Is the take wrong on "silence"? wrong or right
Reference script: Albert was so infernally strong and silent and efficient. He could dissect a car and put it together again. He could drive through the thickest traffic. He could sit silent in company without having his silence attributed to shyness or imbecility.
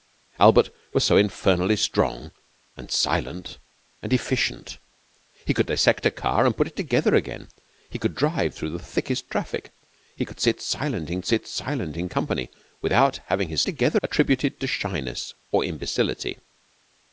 wrong